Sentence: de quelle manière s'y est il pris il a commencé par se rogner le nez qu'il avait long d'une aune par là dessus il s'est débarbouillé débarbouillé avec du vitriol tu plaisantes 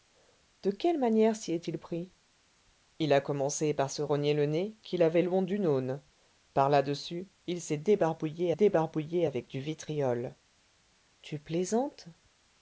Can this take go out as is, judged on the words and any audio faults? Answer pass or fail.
pass